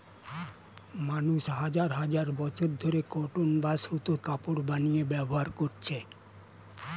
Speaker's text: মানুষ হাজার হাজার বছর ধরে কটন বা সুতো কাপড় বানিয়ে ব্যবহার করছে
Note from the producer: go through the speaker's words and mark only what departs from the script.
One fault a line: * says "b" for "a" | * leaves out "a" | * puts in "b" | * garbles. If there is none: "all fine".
all fine